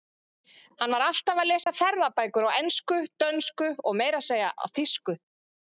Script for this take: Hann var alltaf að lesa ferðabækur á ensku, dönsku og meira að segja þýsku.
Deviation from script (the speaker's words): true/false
false